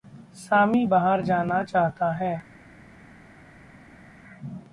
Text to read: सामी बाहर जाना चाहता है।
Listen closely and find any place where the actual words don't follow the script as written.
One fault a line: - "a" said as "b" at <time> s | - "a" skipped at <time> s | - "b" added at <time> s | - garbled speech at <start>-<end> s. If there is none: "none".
none